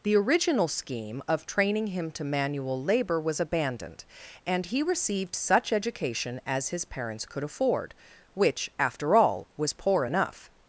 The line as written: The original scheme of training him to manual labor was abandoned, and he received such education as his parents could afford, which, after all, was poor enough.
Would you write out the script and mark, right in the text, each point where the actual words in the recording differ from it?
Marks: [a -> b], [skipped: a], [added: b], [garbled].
The original scheme of training him to manual labor was abandoned, and he received such education as his parents could afford, which, after all, was poor enough.